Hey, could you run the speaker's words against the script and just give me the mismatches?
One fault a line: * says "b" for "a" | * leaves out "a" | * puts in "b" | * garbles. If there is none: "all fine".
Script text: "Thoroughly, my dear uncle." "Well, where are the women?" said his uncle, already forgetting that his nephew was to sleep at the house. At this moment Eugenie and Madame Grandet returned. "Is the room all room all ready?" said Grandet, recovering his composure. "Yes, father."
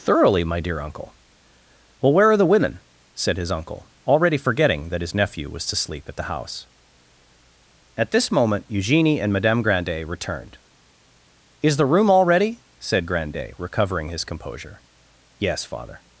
* leaves out "room all"